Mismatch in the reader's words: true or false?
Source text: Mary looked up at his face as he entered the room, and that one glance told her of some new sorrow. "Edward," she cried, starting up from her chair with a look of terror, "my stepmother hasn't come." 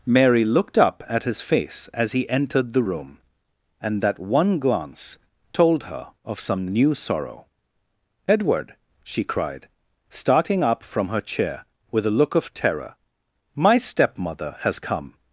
true